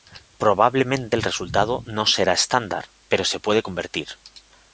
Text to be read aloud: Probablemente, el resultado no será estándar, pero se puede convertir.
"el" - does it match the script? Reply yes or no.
yes